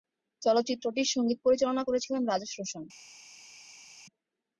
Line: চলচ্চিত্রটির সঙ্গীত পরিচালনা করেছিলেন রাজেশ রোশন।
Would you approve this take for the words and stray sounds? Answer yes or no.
yes